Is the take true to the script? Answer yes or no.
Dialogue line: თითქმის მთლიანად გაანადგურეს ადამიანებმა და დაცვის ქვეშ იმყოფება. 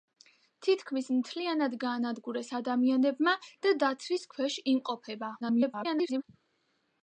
no